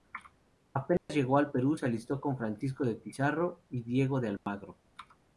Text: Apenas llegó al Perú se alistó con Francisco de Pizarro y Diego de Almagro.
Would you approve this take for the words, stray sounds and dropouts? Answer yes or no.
no